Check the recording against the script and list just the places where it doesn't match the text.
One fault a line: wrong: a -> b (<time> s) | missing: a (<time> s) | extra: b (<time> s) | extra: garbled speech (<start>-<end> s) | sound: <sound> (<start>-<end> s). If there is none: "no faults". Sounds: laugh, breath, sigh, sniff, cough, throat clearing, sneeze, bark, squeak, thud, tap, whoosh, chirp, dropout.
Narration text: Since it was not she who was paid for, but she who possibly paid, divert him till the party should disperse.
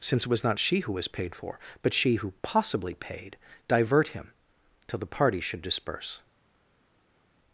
no faults